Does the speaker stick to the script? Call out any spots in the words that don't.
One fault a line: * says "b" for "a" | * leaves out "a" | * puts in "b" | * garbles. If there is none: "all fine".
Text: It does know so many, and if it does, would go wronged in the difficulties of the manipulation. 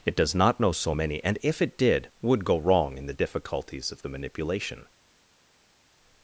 * puts in "not"
* says "did" for "does"
* says "wrong" for "wronged"